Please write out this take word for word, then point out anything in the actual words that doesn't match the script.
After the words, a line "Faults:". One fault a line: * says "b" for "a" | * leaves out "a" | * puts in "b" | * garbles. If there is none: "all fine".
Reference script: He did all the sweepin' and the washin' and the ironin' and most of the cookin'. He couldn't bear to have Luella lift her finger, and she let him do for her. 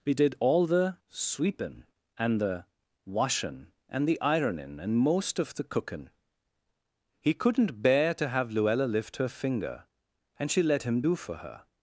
He did all the sweepin' and the washin' and the ironin' and most of the cookin'. He couldn't bear to have Luella lift her finger, and she let him do for her.
Faults:
all fine